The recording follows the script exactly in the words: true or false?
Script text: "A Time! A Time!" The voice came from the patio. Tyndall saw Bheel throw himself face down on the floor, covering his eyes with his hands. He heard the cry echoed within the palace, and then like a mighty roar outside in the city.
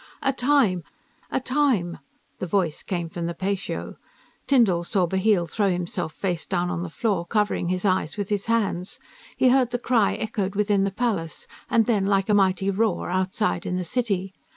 true